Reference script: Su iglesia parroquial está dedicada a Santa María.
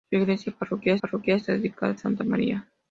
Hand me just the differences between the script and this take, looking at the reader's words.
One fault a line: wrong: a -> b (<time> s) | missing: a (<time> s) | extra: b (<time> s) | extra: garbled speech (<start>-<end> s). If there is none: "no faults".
extra: parroquial (1.0 s)